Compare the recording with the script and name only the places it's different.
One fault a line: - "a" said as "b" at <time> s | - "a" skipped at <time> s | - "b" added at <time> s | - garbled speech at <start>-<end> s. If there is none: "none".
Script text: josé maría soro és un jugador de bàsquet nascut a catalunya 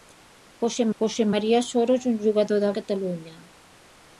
- "josé" added at 1.0 s
- "bàsquet nascut" skipped at 2.7 s